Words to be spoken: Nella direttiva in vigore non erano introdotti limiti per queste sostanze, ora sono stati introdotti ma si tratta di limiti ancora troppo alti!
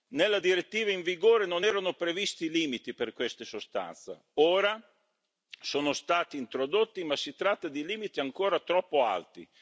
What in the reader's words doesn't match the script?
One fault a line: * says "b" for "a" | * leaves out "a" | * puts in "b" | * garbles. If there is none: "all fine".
* says "previsti" for "introdotti"